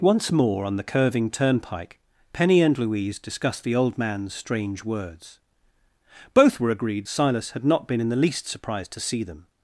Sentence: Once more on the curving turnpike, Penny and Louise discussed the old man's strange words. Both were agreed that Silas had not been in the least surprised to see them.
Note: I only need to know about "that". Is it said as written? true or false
false